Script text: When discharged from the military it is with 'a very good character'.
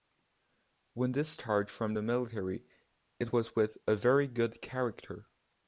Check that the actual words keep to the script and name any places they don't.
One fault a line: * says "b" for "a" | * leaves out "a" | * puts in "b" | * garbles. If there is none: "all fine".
* says "was" for "is"